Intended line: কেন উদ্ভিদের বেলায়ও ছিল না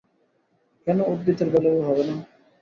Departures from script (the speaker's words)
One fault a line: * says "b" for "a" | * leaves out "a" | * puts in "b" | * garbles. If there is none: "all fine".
* says "হবে" for "ছিল"